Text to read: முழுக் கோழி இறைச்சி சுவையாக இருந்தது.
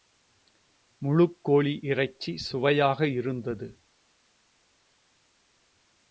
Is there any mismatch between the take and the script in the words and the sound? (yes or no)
no